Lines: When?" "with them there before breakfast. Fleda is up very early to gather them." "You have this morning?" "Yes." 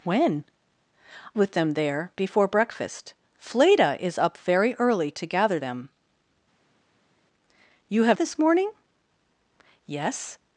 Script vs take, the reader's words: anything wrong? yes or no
no